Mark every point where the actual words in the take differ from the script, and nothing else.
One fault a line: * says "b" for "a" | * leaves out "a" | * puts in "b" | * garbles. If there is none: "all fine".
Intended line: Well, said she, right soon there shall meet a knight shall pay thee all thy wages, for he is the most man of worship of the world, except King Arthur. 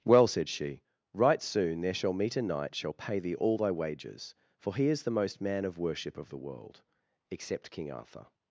all fine